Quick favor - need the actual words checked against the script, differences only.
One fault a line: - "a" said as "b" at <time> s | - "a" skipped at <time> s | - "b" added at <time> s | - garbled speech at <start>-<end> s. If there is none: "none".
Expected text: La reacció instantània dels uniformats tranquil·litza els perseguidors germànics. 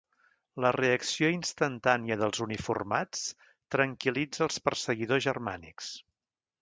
none